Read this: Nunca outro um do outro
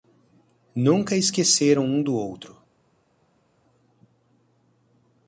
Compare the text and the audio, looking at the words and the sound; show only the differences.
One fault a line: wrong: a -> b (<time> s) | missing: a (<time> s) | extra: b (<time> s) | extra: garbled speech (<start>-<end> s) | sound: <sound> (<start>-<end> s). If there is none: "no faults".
wrong: outro -> esqueceram (1.1 s)